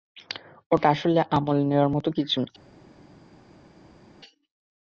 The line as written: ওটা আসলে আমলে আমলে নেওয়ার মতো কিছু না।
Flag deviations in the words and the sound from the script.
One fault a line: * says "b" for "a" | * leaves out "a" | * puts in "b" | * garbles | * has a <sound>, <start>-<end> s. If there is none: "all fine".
* leaves out "আমলে"